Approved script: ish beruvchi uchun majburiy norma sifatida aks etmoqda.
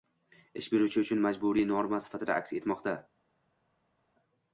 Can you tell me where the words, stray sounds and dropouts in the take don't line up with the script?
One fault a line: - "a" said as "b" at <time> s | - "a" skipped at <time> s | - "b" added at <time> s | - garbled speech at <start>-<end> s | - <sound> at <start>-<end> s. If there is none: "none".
none